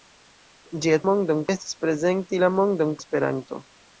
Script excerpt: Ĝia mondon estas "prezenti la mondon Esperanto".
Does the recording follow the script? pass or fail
pass